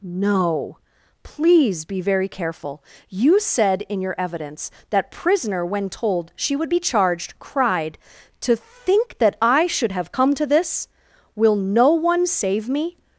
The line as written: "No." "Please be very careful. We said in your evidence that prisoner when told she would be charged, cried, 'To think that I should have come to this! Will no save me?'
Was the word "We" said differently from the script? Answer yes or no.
yes